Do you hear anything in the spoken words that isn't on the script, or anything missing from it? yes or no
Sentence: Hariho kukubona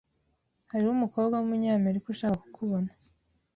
yes